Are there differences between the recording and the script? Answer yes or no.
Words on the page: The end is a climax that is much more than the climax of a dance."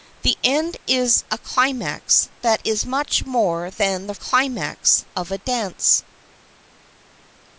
no